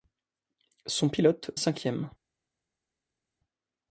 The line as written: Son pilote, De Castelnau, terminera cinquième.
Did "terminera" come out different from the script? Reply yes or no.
yes